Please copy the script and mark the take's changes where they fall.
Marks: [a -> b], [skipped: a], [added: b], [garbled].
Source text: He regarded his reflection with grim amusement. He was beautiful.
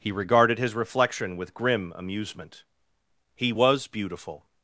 He regarded his reflection with grim amusement. He was beautiful.